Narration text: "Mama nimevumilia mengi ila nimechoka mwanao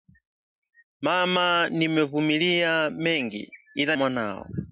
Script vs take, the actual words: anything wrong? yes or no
yes